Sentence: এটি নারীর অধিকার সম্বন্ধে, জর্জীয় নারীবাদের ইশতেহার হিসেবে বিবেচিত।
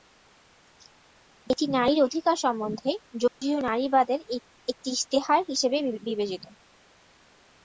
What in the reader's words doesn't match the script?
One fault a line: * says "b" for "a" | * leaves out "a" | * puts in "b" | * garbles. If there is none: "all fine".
* puts in "একটি"